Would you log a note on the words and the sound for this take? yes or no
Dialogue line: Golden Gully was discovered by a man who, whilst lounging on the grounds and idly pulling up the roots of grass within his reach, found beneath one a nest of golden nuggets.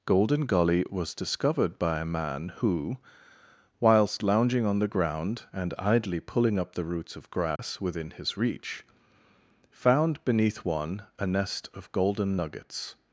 yes